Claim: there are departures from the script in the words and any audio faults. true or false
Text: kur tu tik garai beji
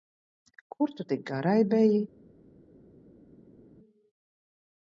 false